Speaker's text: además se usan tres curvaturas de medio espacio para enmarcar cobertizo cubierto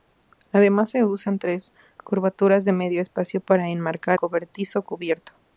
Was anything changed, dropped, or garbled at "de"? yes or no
no